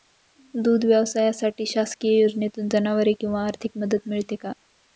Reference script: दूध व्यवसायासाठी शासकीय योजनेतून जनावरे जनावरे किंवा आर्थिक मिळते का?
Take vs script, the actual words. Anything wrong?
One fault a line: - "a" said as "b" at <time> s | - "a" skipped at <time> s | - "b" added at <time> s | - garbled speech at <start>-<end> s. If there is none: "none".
- "जनावरे" skipped at 3.1 s
- "मदत" added at 3.8 s